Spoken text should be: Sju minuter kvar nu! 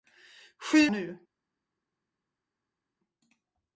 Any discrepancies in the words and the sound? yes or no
yes